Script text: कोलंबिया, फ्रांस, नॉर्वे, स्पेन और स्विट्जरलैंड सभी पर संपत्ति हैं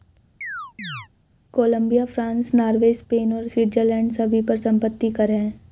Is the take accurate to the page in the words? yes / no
no